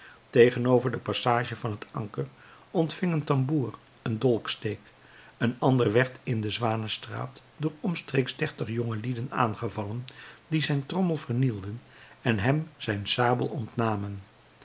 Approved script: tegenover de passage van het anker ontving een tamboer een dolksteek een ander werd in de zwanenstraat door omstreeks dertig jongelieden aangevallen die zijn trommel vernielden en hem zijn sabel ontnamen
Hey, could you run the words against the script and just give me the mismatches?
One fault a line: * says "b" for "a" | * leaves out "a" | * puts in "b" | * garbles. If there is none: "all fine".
all fine